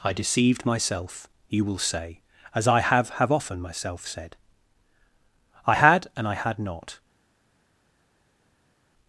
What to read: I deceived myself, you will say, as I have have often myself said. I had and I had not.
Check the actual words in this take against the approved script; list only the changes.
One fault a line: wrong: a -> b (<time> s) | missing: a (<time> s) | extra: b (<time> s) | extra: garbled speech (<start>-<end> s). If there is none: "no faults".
no faults